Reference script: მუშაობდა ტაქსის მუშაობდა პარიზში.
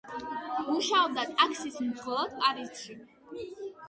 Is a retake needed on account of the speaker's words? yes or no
yes